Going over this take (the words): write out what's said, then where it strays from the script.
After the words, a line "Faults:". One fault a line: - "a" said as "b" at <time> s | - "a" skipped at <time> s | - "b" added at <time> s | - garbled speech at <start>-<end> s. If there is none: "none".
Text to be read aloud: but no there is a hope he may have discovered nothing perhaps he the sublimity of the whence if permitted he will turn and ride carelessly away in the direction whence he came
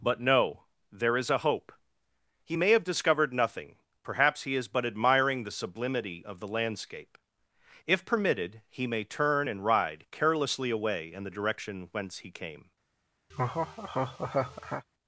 but no there is a hope he may have discovered nothing perhaps he is but admiring the sublimity of the landscape if permitted he may turn and ride carelessly away in the direction whence he came
Faults:
- "is but admiring" added at 4.5 s
- "whence" said as "landscape" at 6.5 s
- "will" said as "may" at 8.9 s